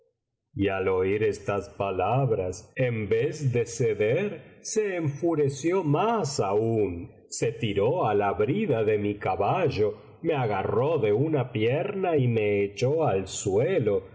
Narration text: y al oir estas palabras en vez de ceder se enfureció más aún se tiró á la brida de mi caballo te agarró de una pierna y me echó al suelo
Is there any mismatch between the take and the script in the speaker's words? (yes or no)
yes